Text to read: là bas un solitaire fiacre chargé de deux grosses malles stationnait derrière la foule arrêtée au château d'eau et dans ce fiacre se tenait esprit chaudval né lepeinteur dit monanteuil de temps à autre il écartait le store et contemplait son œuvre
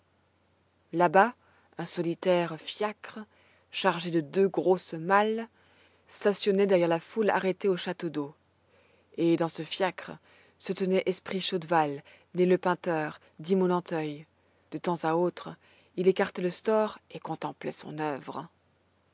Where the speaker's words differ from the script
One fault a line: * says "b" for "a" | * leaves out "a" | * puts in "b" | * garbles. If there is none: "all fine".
all fine